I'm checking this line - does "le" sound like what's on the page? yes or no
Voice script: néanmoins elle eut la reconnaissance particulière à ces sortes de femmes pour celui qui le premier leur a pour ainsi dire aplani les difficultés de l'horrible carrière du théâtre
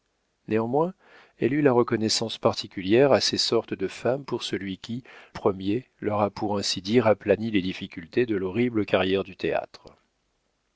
no